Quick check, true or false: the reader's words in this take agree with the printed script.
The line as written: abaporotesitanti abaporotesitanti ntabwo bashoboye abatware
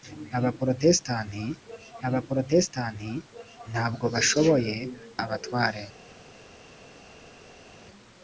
true